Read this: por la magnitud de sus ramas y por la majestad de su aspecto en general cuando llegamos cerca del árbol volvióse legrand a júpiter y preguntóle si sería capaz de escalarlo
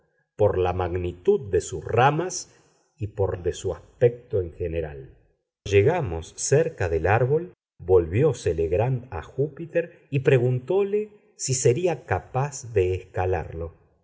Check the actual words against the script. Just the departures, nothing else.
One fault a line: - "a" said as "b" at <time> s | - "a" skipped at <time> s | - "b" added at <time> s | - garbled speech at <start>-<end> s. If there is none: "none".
- "la majestad" skipped at 3.4 s
- "cuando" skipped at 5.1 s